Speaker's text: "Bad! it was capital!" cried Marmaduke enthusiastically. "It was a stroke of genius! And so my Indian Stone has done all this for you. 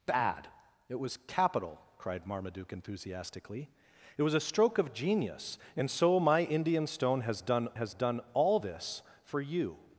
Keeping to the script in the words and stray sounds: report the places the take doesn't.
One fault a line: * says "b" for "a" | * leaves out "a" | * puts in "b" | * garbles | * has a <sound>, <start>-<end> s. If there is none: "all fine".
* puts in "has done"